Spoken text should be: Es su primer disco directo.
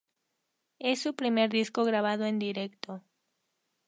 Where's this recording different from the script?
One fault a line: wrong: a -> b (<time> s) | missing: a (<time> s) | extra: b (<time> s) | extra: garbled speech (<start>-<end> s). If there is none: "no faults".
extra: grabado en (1.8 s)